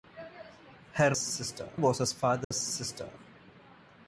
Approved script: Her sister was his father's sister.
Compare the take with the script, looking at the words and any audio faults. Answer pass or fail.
fail